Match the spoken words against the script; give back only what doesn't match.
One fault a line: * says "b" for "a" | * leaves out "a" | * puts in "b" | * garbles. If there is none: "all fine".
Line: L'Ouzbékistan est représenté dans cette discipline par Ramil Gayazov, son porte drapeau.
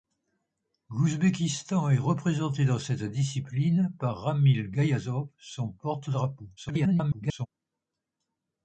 * garbles